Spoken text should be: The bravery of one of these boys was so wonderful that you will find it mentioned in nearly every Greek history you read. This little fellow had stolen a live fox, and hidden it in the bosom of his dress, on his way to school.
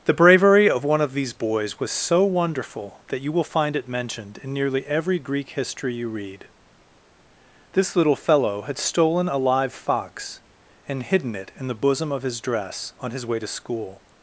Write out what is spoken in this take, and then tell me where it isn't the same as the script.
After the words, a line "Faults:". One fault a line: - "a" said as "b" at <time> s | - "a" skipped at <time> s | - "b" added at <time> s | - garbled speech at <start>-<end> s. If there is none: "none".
The bravery of one of these boys was so wonderful that you will find it mentioned in nearly every Greek history you read. This little fellow had stolen a live fox, and hidden it in the bosom of his dress, on his way to school.
Faults:
none